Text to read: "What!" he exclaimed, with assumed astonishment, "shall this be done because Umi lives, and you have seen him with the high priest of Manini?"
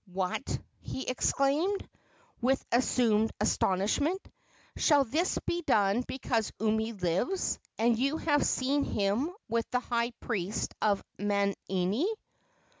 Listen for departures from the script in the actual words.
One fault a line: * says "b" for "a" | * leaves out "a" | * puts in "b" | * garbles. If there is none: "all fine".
all fine